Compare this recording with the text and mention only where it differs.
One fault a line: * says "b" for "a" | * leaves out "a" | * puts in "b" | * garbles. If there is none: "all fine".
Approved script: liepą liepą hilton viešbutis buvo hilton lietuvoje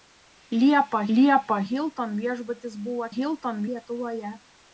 all fine